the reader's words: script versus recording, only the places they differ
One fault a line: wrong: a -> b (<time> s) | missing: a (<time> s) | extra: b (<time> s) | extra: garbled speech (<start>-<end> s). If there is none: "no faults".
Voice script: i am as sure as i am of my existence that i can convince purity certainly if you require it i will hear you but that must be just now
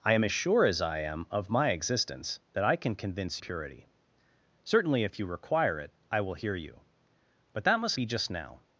no faults